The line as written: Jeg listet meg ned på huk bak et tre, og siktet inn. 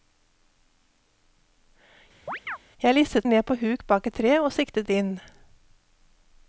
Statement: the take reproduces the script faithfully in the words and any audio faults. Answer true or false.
false